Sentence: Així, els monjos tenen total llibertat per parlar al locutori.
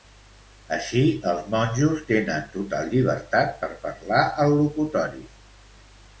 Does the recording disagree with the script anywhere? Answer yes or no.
no